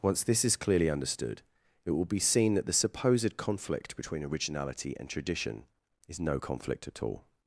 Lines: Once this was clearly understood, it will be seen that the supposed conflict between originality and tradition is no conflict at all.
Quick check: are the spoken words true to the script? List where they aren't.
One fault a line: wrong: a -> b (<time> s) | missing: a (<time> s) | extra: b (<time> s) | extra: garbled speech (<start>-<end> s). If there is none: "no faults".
wrong: was -> is (0.4 s)